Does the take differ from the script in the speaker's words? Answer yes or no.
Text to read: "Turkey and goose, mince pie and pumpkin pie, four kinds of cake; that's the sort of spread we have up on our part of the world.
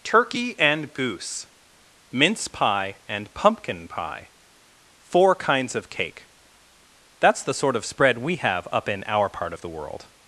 yes